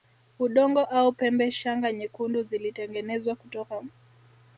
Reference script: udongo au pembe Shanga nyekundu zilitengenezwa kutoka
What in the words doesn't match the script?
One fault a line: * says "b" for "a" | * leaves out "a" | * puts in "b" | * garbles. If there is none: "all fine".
all fine